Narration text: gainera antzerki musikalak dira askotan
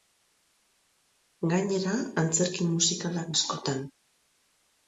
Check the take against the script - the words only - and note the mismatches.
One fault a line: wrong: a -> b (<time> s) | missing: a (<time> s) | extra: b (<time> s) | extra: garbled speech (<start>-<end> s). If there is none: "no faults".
missing: dira (3.3 s)